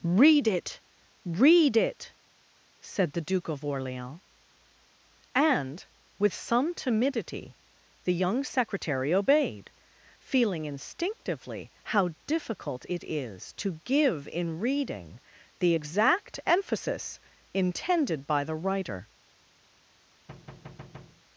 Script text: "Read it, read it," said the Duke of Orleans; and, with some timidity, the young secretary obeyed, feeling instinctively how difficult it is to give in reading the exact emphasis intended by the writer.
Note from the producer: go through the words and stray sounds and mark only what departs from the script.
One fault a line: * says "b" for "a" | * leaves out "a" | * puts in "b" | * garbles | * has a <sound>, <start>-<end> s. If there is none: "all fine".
* has a thud, 20.3-21.2 s